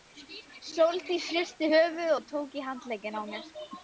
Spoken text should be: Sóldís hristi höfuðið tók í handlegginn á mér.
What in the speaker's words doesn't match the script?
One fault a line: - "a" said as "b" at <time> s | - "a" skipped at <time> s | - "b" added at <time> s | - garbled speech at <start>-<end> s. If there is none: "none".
- "og" added at 2.1 s